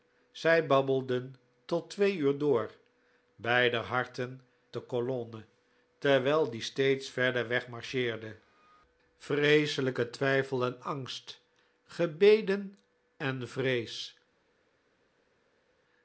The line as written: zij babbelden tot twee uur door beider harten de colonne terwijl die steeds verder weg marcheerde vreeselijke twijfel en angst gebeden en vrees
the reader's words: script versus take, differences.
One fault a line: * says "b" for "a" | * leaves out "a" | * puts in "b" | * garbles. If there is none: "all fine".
all fine